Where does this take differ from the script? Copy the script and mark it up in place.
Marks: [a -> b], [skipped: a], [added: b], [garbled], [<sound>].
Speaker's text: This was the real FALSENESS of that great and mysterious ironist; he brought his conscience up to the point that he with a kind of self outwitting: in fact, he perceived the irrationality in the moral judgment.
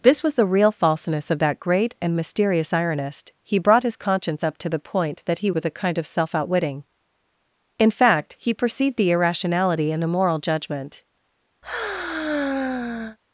This was the real FALSENESS of that great and mysterious ironist; he brought his conscience up to the point that he with a kind of self outwitting: in fact, he perceived the irrationality in the moral judgment. [sigh]